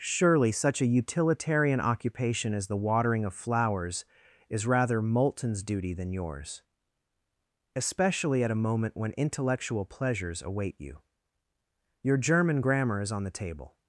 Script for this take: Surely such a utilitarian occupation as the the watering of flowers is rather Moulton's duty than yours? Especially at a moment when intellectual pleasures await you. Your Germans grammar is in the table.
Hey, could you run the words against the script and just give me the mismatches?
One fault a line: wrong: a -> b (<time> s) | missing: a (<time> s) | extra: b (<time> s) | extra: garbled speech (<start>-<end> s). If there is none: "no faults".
missing: the (2.8 s)
wrong: Germans -> German (12.2 s)
wrong: in -> on (13.1 s)